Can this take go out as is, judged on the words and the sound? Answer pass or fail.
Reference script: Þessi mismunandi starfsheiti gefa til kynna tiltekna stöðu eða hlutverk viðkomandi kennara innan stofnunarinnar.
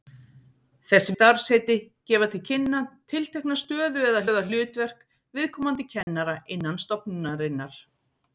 fail